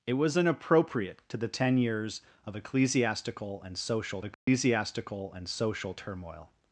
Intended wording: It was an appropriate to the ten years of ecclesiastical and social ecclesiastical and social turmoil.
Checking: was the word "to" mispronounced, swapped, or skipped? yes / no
no